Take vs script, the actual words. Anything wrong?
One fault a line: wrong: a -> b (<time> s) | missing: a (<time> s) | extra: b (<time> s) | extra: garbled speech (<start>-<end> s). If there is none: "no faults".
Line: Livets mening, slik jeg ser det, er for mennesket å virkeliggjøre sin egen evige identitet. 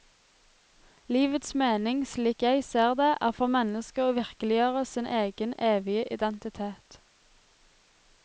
no faults